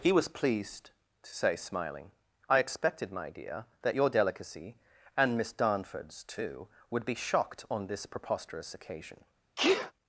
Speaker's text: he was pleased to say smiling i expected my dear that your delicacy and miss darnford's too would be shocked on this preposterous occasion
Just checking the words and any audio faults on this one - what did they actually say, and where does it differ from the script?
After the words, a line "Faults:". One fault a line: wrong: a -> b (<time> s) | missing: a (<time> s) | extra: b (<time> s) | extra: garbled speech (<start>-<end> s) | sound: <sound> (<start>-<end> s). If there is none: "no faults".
he was pleased to say smiling i expected my dear that your delicacy and miss darnford's too would be shocked on this preposterous occasion
Faults:
sound: sneeze (9.6-9.9 s)